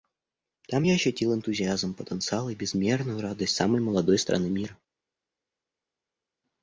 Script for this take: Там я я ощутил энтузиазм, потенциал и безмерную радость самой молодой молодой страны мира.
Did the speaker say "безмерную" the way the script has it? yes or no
yes